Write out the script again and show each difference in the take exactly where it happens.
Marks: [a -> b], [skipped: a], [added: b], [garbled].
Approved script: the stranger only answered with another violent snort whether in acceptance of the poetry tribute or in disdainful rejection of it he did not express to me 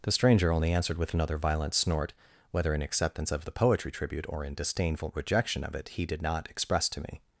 the stranger only answered with another violent snort whether in acceptance of the poetry tribute or in disdainful rejection of it he did not express to me